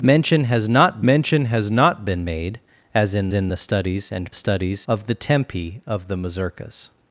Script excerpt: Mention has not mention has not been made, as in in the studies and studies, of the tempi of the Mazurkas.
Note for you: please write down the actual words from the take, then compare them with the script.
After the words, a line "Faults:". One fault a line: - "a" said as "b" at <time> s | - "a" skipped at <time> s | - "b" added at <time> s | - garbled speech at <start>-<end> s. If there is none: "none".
Mention has not mention has not been made, as in in the studies and studies, of the tempi of the Mazurkas.
Faults:
none